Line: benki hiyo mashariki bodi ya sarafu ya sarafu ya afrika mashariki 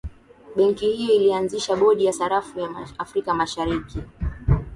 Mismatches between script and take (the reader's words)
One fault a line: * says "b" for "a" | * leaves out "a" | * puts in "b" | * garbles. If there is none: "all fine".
* says "ilianzisha" for "mashariki"
* leaves out "sarafu ya"